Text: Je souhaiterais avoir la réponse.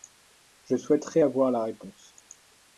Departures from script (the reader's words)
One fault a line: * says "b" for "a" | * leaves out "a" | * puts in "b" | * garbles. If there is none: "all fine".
all fine